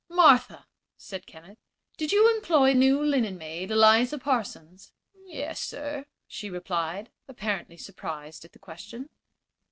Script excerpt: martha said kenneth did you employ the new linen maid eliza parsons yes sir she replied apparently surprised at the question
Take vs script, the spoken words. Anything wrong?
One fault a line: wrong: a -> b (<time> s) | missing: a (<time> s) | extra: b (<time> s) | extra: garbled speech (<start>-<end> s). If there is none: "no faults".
missing: the (2.7 s)